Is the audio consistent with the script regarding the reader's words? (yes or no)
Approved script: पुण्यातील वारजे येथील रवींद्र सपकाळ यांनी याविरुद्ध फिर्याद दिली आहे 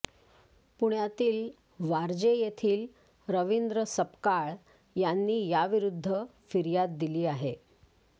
yes